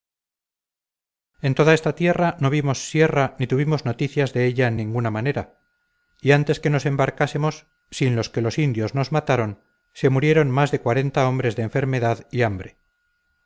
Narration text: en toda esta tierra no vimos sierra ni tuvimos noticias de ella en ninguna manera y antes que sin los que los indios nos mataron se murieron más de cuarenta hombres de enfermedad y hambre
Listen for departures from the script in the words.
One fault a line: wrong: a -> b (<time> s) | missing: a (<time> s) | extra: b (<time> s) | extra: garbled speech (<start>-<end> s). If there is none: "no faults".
extra: nos embarcásemos (6.7 s)